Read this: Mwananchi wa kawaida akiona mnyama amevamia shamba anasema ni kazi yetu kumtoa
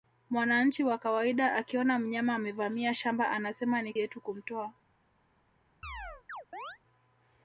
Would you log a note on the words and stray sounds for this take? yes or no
yes